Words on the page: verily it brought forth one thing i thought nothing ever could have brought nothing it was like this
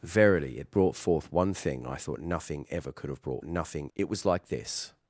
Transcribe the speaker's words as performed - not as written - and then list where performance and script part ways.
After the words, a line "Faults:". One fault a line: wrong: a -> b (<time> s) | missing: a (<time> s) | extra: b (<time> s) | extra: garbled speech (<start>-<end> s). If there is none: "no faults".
verily it brought forth one thing i thought nothing ever could have brought nothing it was like this
Faults:
no faults